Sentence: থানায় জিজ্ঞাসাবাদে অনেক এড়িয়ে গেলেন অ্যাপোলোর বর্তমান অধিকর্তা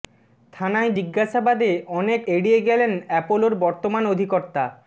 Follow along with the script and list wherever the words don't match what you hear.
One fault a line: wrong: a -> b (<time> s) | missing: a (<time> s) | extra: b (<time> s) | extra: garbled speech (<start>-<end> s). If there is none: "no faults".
no faults